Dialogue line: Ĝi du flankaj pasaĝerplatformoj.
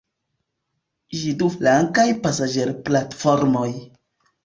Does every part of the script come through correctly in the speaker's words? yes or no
yes